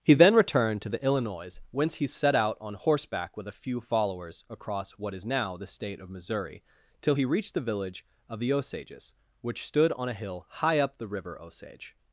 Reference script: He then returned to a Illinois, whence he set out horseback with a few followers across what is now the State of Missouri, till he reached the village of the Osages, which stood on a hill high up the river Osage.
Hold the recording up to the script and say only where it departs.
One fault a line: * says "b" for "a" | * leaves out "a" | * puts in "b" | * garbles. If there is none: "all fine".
* says "the" for "a"
* puts in "on"